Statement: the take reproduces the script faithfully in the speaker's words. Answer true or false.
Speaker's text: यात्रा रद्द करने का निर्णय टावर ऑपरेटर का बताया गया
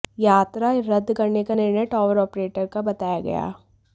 true